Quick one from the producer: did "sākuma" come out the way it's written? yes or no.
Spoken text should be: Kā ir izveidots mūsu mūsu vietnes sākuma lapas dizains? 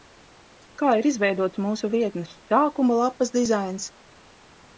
yes